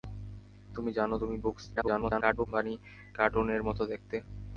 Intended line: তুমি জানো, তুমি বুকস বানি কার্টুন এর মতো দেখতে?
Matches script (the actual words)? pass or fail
fail